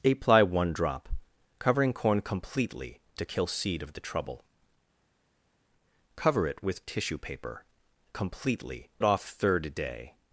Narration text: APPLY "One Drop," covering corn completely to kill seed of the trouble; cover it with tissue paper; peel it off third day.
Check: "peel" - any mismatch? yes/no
yes